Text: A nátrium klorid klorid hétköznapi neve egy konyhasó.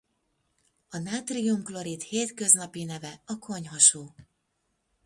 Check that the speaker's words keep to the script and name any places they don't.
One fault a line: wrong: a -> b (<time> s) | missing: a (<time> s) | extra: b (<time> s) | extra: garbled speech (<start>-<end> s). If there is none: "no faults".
missing: klorid (2.0 s)
wrong: egy -> a (3.3 s)